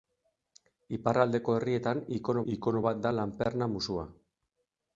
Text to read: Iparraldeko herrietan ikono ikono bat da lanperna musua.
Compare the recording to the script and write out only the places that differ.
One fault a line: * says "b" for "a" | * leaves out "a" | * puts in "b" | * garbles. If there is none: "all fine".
all fine